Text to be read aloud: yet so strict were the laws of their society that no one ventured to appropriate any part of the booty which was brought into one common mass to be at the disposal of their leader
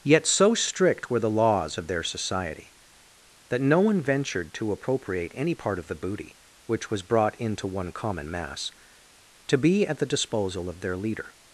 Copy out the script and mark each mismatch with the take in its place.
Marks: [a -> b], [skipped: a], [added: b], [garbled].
yet so strict were the laws of their society that no one ventured to appropriate any part of the booty which was brought into one common mass to be at the disposal of their leader